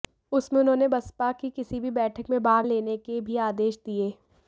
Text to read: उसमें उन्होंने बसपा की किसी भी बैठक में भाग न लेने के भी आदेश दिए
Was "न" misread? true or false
true